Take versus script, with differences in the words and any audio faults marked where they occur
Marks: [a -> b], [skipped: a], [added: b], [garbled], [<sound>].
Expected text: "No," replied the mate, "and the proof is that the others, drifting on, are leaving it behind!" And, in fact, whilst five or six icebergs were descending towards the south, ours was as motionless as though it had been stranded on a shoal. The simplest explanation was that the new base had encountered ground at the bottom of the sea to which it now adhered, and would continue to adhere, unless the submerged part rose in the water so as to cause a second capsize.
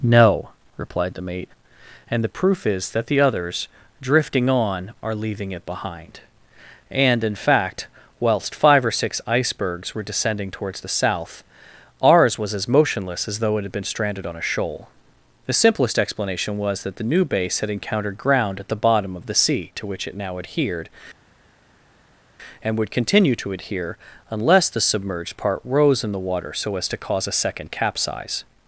"No," replied the mate, "and the proof is that the others, drifting on, are leaving it behind!" And, in fact, whilst five or six icebergs were descending towards the south, ours was as motionless as though it had been stranded on a shoal. The simplest explanation was that the new base had encountered ground at the bottom of the sea to which it now adhered, and would continue to adhere, unless the submerged part rose in the water so as to cause a second capsize.